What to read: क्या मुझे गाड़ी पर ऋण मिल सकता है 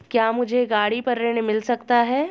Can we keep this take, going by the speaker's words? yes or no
yes